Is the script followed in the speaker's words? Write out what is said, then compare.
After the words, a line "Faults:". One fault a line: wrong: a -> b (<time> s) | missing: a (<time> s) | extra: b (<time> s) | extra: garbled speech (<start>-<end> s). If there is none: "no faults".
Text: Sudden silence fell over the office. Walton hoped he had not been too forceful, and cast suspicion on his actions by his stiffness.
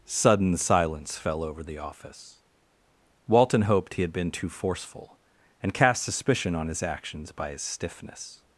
Sudden silence fell over the office. Walton hoped he had been too forceful, and cast suspicion on his actions by his stiffness.
Faults:
missing: not (4.1 s)